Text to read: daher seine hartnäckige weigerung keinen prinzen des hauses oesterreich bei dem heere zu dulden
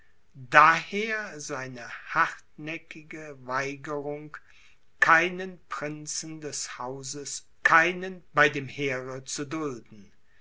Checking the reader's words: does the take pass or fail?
fail